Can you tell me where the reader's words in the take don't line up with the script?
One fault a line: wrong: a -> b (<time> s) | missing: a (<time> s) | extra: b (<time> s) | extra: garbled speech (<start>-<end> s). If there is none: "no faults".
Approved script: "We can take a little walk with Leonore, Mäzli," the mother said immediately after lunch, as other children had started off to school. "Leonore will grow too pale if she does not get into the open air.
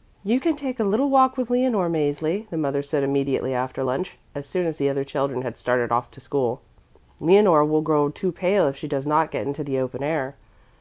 wrong: We -> You (0.2 s)
extra: soon as the (4.5 s)